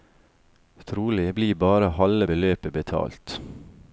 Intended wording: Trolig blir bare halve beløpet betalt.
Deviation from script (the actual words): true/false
false